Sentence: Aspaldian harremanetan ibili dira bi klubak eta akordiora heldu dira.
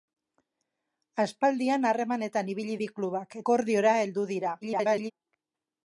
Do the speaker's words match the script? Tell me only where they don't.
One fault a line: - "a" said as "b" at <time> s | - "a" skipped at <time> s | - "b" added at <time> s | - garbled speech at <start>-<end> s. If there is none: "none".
- "dira" skipped at 2.8 s
- "eta" skipped at 3.4 s
- garbled speech at 4.6-5.1 s